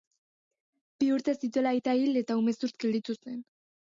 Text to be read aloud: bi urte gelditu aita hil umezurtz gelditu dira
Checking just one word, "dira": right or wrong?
wrong